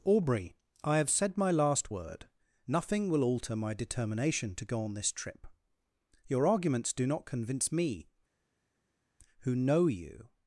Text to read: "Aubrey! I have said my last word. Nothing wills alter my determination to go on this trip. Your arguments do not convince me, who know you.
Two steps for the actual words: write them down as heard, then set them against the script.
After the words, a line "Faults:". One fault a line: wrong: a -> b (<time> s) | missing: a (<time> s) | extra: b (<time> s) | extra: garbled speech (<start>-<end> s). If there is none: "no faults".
"Aubrey! I have said my last word. Nothing will alter my determination to go on this trip. Your arguments do not convince me, who know you.
Faults:
wrong: wills -> will (3.1 s)